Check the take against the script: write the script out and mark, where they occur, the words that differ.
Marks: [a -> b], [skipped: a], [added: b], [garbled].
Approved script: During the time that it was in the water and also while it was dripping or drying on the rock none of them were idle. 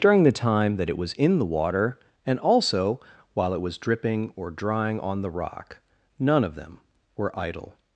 During the time that it was in the water and also while it was dripping or drying on the rock none of them were idle.